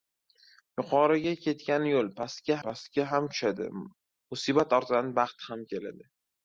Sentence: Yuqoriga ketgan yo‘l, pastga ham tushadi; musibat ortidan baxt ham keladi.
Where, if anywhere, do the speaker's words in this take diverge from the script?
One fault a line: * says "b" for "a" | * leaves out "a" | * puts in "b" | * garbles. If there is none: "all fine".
* puts in "pastga"